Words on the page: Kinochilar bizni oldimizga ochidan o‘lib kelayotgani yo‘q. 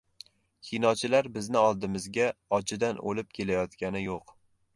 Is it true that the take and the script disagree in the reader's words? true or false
false